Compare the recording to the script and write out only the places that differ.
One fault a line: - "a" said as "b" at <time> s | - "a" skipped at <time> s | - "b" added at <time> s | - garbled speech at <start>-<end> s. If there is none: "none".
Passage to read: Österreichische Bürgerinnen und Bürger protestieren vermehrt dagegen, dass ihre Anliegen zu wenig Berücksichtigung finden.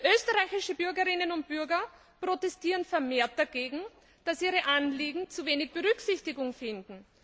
none